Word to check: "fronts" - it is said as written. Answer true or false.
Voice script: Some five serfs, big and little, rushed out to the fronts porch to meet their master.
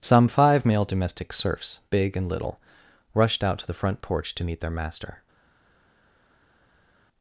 false